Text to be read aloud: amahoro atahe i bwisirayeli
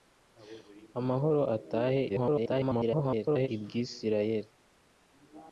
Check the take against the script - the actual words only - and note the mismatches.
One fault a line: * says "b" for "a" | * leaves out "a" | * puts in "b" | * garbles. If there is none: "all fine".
* garbles